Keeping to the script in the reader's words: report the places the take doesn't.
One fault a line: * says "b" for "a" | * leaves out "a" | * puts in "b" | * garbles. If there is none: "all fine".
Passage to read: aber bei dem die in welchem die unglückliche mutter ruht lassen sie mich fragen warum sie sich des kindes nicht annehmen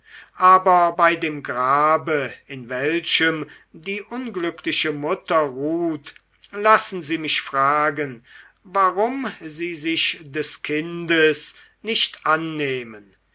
* says "grabe" for "die"